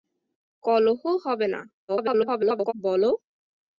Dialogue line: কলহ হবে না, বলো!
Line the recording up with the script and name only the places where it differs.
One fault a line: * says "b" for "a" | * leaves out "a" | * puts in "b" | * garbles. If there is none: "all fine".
* garbles